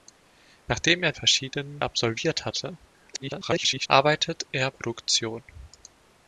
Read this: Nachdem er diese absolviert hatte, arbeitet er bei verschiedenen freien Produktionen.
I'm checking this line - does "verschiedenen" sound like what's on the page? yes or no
no